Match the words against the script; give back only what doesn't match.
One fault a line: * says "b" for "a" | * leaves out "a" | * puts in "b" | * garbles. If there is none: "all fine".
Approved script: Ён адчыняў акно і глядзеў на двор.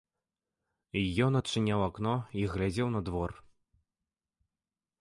all fine